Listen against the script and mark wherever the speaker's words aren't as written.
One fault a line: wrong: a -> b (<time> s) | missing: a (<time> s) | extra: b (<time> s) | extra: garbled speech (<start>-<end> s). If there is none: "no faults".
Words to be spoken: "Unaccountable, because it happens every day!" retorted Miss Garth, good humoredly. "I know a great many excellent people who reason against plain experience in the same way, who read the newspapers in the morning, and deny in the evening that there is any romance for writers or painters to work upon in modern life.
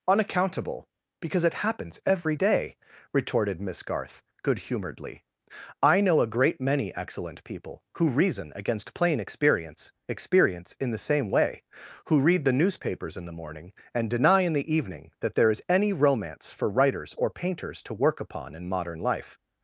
extra: experience (10.1 s)